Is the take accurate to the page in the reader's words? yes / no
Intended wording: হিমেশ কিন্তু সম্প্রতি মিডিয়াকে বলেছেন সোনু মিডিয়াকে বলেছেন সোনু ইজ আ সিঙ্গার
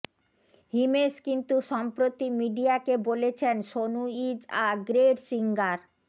no